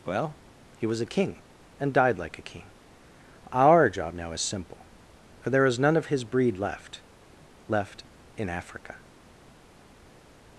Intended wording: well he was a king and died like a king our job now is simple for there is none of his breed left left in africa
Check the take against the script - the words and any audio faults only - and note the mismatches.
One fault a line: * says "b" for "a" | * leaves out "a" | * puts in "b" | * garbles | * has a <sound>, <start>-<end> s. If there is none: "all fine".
all fine